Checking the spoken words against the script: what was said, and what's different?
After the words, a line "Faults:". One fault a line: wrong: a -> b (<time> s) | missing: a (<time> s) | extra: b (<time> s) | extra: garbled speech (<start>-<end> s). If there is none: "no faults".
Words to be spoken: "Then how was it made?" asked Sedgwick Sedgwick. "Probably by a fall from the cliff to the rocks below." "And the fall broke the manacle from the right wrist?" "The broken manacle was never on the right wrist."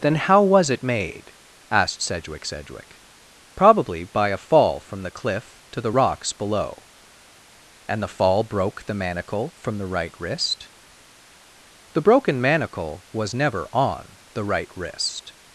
"Then how was it made?" asked Sedgwick Sedgwick. "Probably by a fall from the cliff to the rocks below." "And the fall broke the manacle from the right wrist?" "The broken manacle was never on the right wrist."
Faults:
no faults